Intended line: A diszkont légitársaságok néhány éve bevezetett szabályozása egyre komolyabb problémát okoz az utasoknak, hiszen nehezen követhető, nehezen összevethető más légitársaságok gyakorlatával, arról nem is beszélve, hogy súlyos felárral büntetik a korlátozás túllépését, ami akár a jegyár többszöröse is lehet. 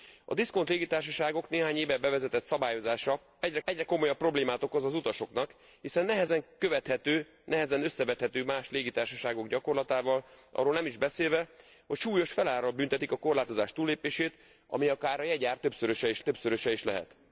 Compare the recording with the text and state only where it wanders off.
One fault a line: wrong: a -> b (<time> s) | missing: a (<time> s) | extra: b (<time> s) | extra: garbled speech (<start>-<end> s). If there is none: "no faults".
extra: egyre (3.6 s)
extra: többszöröse is (16.2 s)